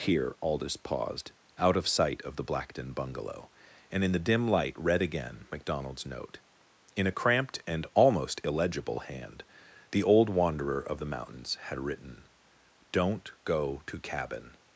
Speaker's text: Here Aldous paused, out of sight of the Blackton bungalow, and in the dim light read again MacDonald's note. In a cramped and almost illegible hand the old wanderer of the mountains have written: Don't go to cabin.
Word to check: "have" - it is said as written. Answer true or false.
false